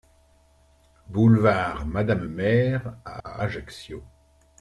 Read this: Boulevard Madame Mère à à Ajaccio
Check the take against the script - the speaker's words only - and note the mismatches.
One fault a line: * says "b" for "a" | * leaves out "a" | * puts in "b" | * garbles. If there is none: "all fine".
all fine